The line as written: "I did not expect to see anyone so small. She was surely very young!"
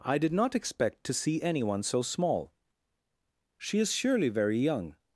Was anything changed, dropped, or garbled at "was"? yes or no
yes